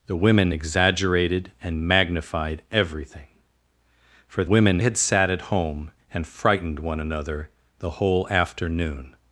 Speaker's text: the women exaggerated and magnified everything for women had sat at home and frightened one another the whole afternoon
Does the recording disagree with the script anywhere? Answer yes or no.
no